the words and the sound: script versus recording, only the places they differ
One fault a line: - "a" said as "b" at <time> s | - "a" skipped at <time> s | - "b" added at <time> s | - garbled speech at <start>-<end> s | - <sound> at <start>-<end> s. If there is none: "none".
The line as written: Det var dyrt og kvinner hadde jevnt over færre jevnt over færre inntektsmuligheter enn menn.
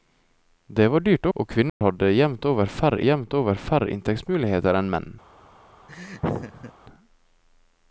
- dropout at 1.7-1.8 s
- laugh at 5.9-6.7 s